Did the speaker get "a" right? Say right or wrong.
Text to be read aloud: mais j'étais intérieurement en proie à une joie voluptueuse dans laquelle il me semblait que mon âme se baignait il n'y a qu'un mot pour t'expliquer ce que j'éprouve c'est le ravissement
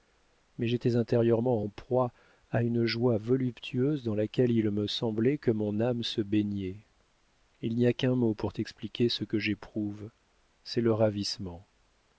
right